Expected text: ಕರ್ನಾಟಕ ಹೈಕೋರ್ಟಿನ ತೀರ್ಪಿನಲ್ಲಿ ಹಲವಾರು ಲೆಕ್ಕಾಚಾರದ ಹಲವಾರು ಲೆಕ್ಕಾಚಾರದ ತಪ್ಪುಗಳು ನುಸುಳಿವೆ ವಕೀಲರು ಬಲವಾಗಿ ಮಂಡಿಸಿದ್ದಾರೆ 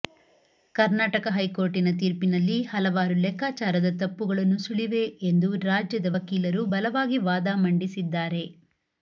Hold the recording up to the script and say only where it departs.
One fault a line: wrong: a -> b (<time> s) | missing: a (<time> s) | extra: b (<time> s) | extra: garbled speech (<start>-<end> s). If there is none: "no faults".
wrong: ಹಲವಾರು ಲೆಕ್ಕಾಚಾರದ ತಪ್ಪುಗಳು ನುಸುಳಿವೆ -> ತಪ್ಪುಗಳು ನುಸುಳಿವೆ ಎಂದು ರಾಜ್ಯದ (4.0 s)
extra: ವಾದ (7.3 s)